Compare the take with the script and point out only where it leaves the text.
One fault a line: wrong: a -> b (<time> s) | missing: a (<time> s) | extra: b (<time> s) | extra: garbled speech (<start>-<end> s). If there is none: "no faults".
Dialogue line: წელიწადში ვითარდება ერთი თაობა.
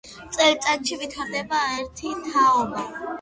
no faults